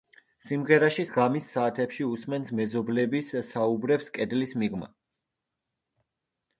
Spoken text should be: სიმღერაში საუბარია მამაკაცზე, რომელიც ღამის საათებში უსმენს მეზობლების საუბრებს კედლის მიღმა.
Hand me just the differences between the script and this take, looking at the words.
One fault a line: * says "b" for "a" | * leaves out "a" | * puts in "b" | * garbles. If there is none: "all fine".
* leaves out "საუბარია მამაკაცზე რომელიც"